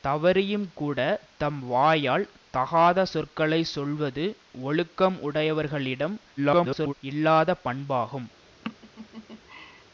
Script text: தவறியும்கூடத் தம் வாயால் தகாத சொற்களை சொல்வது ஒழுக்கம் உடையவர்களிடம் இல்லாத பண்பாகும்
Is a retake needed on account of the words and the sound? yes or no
yes